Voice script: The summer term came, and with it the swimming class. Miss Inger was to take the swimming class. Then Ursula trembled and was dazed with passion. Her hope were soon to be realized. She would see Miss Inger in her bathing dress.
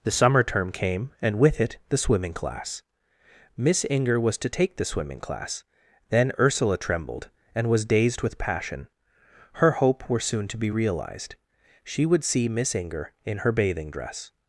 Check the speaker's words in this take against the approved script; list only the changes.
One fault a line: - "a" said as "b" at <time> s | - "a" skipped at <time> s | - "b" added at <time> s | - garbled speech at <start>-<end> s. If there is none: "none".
none